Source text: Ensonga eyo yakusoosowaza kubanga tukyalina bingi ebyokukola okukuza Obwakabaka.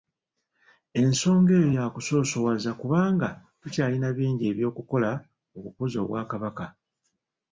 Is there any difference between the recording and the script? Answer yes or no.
no